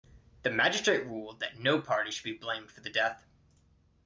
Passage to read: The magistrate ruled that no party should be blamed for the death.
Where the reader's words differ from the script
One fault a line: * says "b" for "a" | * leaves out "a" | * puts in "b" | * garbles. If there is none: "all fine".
all fine